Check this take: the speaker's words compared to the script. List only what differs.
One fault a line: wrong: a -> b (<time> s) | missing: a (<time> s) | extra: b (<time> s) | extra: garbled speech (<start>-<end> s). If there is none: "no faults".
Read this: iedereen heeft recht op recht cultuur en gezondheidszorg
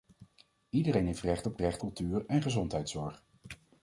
no faults